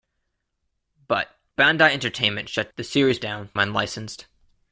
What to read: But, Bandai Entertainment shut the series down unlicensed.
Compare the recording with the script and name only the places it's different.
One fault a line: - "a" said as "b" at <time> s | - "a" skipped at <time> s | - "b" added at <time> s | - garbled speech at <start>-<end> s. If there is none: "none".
none